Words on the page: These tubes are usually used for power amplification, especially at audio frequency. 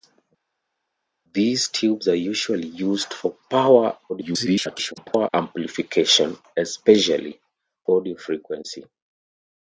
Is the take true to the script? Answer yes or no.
no